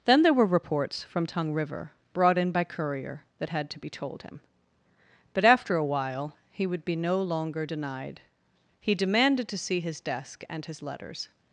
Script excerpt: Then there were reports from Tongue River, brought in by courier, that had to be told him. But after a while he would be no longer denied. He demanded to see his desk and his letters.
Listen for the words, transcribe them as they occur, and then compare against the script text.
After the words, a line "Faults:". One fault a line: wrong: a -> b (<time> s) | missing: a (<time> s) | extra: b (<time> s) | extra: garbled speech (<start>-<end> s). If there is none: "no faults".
Then there were reports from Tongue River, brought in by courier, that had to be told him. But after a while he would be no longer denied. He demanded to see his desk and his letters.
Faults:
no faults